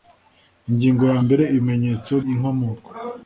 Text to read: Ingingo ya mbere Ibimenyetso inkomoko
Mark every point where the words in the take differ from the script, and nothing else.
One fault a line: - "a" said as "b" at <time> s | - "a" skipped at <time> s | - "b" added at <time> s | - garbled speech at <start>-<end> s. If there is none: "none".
none